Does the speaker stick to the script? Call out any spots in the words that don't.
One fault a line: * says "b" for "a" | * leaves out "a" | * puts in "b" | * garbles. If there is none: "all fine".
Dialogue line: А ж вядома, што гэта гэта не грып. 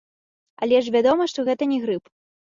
* says "Але" for "А"
* leaves out "гэта"